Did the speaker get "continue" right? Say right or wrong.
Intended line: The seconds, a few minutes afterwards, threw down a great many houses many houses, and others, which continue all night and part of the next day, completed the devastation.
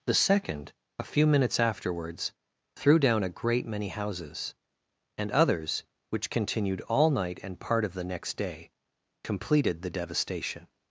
wrong